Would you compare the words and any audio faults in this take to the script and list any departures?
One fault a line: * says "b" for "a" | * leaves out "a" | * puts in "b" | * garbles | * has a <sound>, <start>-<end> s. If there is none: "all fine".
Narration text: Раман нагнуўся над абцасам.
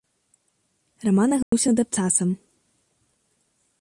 * has a dropout, 1.4-1.5 s